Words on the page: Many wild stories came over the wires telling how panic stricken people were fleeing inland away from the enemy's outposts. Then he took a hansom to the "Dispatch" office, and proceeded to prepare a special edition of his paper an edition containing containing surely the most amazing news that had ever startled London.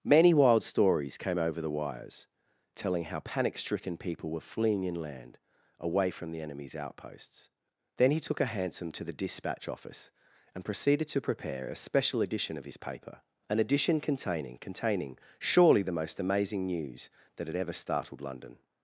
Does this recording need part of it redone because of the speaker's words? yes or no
no